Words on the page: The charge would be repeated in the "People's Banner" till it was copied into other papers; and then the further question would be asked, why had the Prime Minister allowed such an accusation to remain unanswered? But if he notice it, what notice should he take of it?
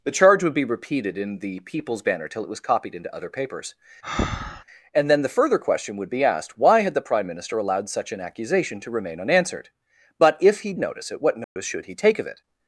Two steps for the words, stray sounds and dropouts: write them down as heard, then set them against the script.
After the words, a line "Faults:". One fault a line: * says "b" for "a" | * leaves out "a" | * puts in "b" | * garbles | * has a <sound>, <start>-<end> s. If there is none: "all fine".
The charge would be repeated in the "People's Banner" till it was copied into other papers; and then the further question would be asked, why had the Prime Minister allowed such an accusation to remain unanswered? But if he notice it, what notice should he take of it?
Faults:
* has a breath, 4.0-4.6 s
* has a dropout, 11.4-11.6 s